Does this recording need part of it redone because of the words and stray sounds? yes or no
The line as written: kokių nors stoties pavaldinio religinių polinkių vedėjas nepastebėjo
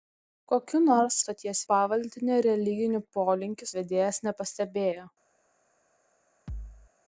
yes